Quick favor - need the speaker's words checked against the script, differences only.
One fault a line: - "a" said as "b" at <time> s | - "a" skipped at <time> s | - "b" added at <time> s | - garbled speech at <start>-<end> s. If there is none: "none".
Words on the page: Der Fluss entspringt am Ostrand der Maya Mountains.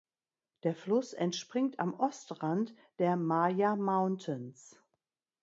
none